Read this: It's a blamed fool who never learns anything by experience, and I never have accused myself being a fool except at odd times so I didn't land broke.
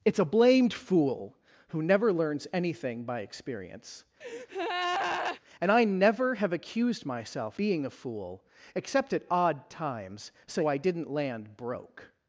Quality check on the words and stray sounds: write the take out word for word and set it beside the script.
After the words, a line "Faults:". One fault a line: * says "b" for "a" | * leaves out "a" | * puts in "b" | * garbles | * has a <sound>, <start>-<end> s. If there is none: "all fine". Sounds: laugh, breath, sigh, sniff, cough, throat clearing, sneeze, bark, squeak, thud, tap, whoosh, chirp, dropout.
It's a blamed fool who never learns anything by experience, and I never have accused myself being a fool except at odd times so I didn't land broke.
Faults:
* has a breath, 4.2-5.4 s